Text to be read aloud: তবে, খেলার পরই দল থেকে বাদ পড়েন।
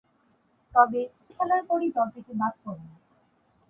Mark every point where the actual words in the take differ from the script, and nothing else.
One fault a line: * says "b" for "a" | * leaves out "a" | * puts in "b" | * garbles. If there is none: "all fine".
all fine